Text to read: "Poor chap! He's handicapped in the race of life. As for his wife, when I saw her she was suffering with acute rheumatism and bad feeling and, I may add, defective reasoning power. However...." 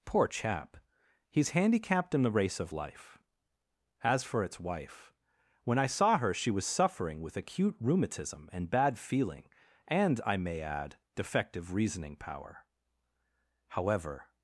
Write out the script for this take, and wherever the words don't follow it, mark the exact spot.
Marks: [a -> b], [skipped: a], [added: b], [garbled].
"Poor chap! He's handicapped in the race of life. As for [his -> its] wife, when I saw her she was suffering with acute rheumatism and bad feeling and, I may add, defective reasoning power. However...."